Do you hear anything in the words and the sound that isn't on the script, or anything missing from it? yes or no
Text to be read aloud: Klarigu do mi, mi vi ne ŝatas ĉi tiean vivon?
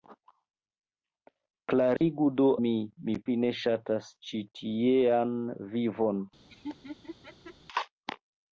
yes